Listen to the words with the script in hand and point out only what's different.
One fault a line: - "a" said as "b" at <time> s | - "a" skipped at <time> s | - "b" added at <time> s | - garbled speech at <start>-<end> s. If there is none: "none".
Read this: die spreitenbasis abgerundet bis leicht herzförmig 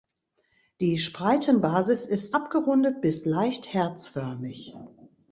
- "ist" added at 2.1 s